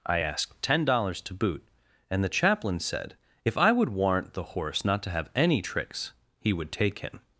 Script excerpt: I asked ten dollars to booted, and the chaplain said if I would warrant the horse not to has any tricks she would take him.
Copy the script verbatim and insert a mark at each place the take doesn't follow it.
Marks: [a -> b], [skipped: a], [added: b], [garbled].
I asked ten dollars to [booted, -> boot] and the chaplain said if I would warrant the horse not to [has -> have] any tricks [she -> he] would take him.